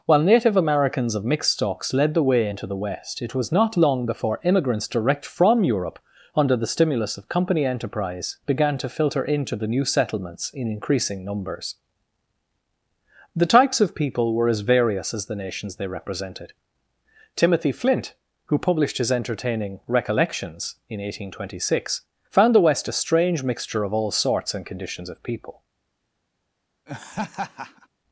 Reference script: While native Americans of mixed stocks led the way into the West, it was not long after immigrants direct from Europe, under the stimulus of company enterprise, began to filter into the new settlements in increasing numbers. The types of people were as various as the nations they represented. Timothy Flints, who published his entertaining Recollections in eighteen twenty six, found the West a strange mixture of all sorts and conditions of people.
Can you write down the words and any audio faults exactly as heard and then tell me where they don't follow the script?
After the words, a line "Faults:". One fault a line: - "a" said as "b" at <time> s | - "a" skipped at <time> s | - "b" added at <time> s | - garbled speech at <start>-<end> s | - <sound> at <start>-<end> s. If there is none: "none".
While native Americans of mixed stocks led the way into the West, it was not long before immigrants direct from Europe, under the stimulus of company enterprise, began to filter into the new settlements in increasing numbers. The types of people were as various as the nations they represented. Timothy Flint, who published his entertaining Recollections in eighteen twenty six, found the West a strange mixture of all sorts and conditions of people.
Faults:
- "after" said as "before" at 4.1 s
- "Flints" said as "Flint" at 17.7 s
- laugh at 26.9-27.9 s